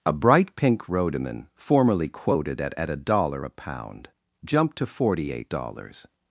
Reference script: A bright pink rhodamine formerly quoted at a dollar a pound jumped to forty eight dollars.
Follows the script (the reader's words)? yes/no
no